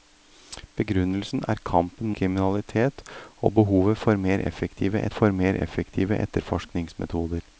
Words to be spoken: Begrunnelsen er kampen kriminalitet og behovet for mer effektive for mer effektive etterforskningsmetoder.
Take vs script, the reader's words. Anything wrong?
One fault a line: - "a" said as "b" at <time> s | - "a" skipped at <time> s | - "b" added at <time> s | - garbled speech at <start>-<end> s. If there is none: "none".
none